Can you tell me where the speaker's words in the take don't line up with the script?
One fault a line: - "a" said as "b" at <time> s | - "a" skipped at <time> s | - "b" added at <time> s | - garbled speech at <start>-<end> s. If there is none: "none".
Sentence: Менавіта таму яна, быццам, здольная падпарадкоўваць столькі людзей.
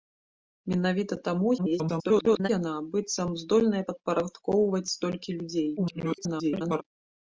- garbled speech at 1.6-2.5 s
- garbled speech at 5.8-6.8 s